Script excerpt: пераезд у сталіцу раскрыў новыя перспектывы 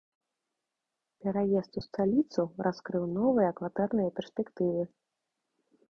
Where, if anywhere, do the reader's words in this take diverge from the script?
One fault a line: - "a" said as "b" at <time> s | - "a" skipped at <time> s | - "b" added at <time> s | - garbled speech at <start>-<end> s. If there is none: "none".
- "кватэрныя" added at 3.6 s